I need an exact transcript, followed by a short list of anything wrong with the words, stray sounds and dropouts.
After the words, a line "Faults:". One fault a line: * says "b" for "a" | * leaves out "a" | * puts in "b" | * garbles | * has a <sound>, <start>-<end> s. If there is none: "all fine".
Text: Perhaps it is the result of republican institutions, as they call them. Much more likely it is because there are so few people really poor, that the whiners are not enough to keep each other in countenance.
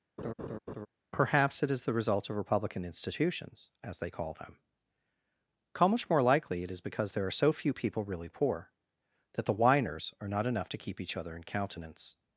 Perhaps it is the result of republican institutions, as they call them. how Much more likely it is because there are so few people really poor, that the whiners are not enough to keep each other in countenance.
Faults:
* has a laugh, 0.2-0.9 s
* puts in "how"